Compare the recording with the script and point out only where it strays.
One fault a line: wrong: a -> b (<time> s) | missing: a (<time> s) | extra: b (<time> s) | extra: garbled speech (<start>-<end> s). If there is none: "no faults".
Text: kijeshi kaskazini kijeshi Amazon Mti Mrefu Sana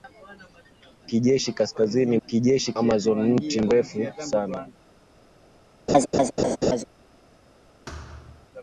no faults